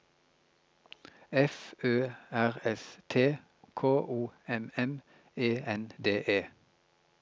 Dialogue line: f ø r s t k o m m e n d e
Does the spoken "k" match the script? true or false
true